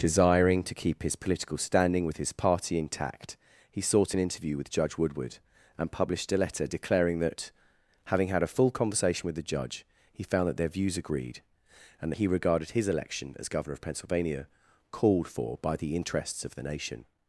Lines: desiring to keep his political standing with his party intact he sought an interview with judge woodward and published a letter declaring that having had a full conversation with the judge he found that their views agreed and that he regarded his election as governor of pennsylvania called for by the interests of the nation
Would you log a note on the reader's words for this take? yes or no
no